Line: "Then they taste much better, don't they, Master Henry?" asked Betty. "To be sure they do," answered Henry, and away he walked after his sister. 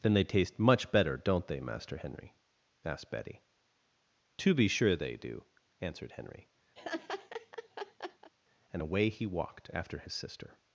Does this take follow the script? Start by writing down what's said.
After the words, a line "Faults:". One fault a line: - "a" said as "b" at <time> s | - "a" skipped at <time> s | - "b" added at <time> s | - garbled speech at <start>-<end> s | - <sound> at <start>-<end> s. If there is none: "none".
"Then they taste much better, don't they, Master Henry?" asked Betty. "To be sure they do," answered Henry, and away he walked after his sister.
Faults:
- laugh at 6.8-8.3 s